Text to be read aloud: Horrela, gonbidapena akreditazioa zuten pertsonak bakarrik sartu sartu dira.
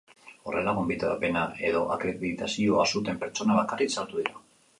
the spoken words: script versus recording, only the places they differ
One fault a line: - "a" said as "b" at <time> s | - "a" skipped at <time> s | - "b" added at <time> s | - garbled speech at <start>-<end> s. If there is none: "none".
- "edo" added at 1.7 s
- "sartu" skipped at 4.2 s